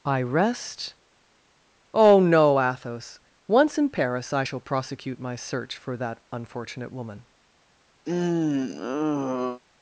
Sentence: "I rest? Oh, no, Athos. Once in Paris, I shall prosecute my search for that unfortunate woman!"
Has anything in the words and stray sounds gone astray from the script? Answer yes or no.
yes